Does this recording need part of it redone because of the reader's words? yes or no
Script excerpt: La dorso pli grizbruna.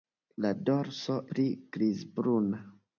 no